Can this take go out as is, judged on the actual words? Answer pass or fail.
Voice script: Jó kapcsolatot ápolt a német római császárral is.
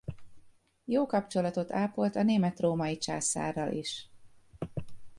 pass